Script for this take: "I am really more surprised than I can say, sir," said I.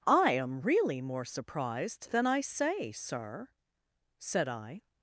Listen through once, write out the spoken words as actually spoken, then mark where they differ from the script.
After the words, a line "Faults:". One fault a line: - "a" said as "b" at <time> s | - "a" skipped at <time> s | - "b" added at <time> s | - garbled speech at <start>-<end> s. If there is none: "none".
"I am really more surprised than I say, sir," said I.
Faults:
- "can" skipped at 2.4 s